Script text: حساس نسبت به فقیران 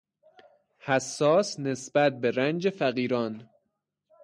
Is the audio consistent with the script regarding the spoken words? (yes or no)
no